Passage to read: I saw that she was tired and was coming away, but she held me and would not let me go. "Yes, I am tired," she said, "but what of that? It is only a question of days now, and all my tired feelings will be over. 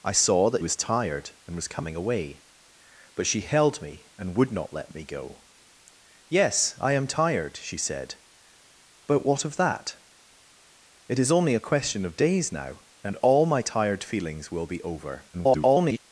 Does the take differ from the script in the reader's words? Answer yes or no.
yes